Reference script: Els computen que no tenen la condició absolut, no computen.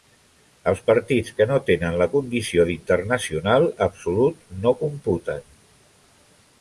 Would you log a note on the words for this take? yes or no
yes